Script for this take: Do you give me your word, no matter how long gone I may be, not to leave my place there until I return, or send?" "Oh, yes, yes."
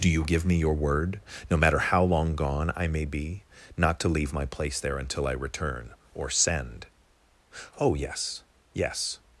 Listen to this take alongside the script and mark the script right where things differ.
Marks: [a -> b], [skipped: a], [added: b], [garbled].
Do you give me your word, no matter how long gone I may be, not to leave my place there until I return, or send?" "Oh, yes, yes."